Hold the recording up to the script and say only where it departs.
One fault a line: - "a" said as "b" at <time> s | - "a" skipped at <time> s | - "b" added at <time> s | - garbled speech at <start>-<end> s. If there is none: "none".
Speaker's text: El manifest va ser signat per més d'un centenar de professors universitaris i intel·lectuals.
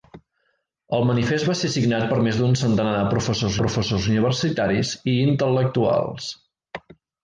- "professors" added at 3.6 s